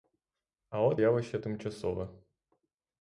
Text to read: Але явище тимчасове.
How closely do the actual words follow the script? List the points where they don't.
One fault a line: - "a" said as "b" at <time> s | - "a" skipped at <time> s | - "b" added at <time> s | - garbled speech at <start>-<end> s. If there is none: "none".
none